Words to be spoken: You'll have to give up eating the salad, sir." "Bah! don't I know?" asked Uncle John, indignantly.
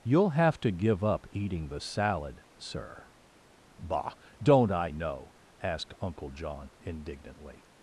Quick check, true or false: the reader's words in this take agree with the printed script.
true